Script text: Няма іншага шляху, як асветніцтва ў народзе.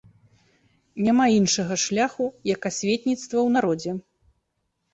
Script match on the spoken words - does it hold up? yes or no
yes